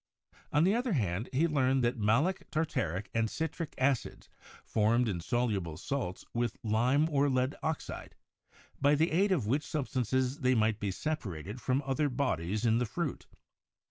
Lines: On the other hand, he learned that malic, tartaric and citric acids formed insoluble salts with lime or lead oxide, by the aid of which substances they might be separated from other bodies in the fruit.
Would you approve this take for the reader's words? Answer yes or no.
yes